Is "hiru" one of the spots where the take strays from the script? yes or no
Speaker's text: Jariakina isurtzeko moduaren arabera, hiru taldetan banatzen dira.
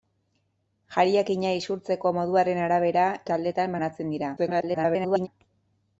yes